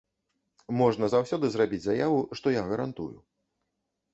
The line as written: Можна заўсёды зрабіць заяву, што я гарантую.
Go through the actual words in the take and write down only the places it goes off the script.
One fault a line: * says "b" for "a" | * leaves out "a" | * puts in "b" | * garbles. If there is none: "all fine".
all fine